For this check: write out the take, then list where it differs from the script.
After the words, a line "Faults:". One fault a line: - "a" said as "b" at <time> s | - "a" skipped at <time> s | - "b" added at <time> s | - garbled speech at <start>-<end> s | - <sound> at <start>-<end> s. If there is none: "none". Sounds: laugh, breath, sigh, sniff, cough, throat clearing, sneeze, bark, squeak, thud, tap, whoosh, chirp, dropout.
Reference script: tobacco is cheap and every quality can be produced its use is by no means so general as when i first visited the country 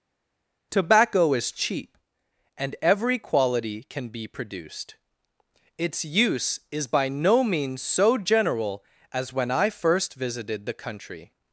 tobacco is cheap and every quality can be produced its use is by no means so general as when i first visited the country
Faults:
none